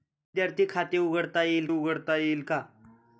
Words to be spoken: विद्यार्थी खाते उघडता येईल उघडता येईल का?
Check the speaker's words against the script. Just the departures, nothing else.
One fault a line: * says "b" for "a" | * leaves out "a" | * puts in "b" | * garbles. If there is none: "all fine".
all fine